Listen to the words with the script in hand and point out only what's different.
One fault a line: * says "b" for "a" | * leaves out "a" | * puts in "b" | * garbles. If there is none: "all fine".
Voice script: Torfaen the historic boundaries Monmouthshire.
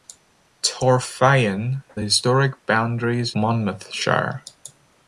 all fine